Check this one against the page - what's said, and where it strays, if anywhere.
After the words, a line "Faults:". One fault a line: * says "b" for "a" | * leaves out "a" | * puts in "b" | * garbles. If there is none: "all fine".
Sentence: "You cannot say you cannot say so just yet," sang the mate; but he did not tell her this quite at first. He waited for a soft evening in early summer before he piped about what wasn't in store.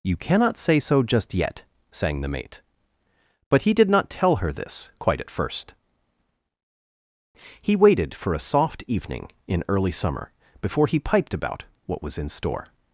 "You cannot say so just yet," sang the mate; but he did not tell her this quite at first. He waited for a soft evening in early summer before he piped about what was in store.
Faults:
* leaves out "you cannot say"
* says "was" for "wasn't"